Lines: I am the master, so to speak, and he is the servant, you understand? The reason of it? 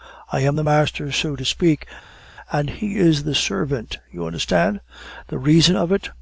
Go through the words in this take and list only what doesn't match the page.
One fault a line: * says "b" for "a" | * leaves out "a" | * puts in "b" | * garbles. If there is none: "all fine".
all fine